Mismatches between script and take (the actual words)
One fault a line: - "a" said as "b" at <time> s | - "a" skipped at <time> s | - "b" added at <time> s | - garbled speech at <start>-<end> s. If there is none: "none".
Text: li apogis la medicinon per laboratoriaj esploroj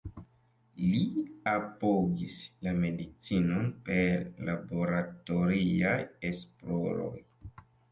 none